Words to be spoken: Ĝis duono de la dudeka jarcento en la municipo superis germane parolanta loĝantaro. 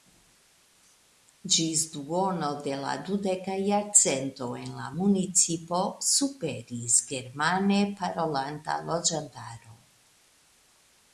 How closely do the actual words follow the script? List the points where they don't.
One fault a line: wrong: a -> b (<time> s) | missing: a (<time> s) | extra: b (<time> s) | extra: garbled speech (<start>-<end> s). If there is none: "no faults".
no faults